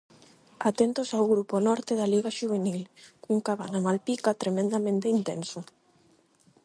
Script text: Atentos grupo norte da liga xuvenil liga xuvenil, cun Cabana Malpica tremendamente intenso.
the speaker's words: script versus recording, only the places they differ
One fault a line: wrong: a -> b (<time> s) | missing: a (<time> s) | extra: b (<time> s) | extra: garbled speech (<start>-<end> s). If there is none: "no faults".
extra: ao (1.1 s)
missing: liga xuvenil (2.8 s)